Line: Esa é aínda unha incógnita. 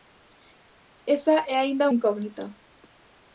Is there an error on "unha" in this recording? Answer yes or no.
yes